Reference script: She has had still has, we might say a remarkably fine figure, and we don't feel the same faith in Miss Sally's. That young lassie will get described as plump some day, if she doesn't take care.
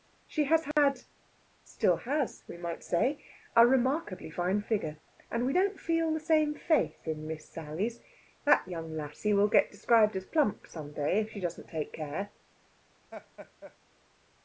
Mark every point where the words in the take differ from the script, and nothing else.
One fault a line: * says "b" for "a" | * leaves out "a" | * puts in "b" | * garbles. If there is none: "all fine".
all fine